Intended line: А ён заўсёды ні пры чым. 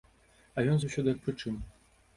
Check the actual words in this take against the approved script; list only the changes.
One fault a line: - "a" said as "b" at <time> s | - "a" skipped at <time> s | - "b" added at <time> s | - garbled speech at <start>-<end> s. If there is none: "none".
none